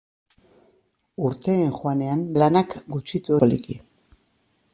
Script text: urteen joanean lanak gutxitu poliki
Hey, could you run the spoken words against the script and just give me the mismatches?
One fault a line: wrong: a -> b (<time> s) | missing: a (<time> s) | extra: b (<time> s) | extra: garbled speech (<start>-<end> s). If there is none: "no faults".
no faults